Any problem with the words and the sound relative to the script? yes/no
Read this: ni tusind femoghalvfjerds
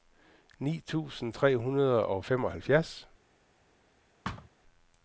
yes